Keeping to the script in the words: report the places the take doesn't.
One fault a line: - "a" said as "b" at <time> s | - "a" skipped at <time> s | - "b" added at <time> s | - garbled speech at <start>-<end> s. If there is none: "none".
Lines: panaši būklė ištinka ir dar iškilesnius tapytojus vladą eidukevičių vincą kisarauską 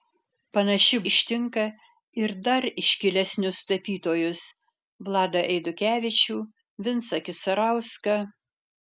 - "būklė" skipped at 1.0 s